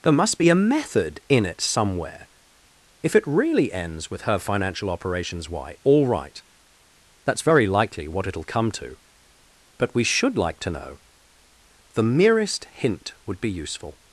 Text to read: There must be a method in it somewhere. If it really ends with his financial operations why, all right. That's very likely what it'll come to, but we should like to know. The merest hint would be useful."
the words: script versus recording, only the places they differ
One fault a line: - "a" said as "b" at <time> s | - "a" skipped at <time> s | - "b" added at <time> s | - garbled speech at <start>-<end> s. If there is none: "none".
- "his" said as "her" at 4.2 s